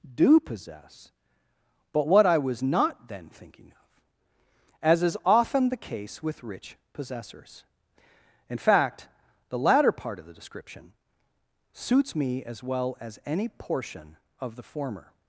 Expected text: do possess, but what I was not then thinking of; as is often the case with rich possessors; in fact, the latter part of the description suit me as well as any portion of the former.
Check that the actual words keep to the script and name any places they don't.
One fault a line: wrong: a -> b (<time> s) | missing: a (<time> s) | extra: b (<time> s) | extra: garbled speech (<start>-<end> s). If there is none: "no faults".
wrong: suit -> suits (11.7 s)